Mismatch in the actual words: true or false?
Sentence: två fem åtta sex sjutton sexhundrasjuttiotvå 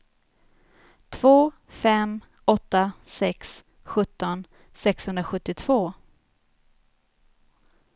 false